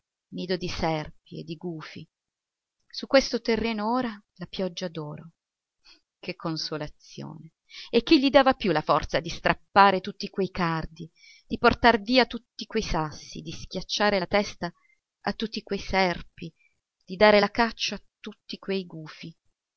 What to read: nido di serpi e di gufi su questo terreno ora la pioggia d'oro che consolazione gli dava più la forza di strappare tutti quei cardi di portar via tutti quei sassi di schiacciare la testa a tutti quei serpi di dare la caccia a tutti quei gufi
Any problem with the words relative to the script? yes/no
yes